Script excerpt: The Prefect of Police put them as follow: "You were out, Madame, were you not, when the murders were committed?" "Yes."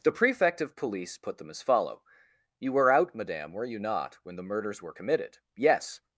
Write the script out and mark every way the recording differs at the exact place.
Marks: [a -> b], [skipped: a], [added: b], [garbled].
The Prefect of Police put them as follow: "You were out, Madame, were you not, when the murders were committed?" "Yes."